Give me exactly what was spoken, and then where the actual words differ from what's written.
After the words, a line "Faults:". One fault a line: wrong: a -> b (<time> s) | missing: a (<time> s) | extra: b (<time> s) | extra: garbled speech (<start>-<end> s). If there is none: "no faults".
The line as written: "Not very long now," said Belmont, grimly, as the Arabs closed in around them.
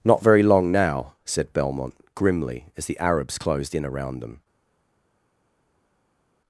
"Not very long now," said Belmont, grimly, as the Arabs closed in around them.
Faults:
no faults